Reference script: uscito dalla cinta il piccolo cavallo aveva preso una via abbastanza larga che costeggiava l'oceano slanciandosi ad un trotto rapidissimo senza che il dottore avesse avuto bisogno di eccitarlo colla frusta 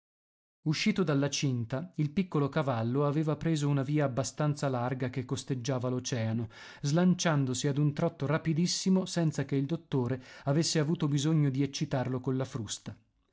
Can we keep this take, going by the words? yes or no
yes